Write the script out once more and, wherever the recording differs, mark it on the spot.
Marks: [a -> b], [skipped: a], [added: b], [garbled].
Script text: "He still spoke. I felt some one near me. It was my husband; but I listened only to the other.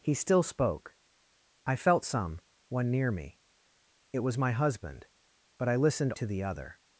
"He still spoke. I felt some one near me. It was my husband; but I listened [skipped: only] to the other.